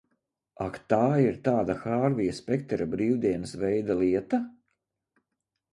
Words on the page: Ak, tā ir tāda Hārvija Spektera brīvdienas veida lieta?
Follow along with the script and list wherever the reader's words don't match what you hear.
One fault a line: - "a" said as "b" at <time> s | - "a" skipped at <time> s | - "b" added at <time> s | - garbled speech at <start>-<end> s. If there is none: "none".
none